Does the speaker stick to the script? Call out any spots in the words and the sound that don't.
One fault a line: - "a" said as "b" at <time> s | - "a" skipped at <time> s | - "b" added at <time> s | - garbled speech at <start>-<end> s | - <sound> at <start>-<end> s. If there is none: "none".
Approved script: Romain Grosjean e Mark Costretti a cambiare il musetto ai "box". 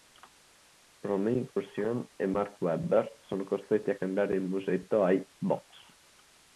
- dropout at 1.5-1.6 s
- "Webber sono" added at 2.6 s